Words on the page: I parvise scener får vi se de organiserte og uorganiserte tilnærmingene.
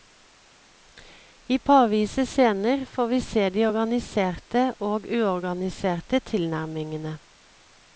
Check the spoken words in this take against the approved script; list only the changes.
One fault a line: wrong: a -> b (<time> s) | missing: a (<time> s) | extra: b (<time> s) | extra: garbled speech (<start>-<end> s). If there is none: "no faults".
no faults